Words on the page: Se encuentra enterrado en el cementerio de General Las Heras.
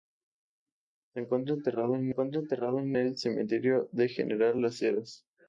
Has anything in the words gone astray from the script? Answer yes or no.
yes